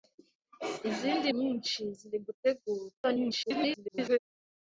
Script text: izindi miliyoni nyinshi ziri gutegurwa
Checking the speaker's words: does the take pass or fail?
fail